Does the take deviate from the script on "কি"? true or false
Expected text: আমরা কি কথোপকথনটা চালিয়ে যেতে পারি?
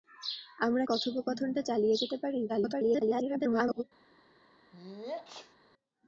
true